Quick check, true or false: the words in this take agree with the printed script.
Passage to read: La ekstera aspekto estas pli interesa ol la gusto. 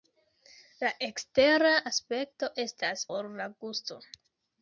false